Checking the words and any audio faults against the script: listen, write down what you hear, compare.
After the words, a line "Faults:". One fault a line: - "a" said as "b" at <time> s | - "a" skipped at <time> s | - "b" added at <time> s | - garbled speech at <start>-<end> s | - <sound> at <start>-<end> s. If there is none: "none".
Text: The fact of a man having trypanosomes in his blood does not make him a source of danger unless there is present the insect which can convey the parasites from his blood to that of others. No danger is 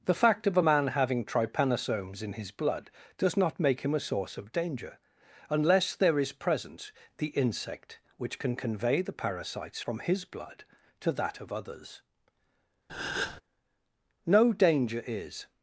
The fact of a man having trypanosomes in his blood does not make him a source of danger unless there is present the insect which can convey the parasites from his blood to that of others. No danger is
Faults:
- breath at 12.9-13.4 s